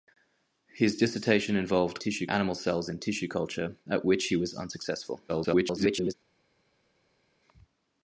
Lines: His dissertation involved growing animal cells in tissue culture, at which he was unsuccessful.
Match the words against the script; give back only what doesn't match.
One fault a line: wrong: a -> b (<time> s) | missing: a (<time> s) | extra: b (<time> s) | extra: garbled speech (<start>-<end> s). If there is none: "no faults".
wrong: growing -> tissue (2.0 s)
extra: garbled speech (5.3-6.1 s)